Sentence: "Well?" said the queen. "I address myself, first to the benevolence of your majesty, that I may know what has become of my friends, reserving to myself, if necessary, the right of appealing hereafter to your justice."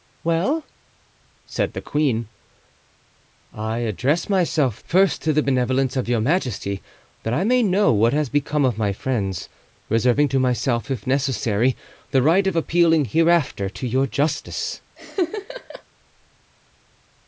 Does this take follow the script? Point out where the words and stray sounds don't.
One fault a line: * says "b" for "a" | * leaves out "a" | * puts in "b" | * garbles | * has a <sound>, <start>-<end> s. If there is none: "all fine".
* has a laugh, 15.0-15.8 s